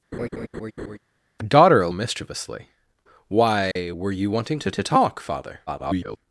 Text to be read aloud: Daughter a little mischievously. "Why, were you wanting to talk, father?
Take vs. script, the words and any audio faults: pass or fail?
fail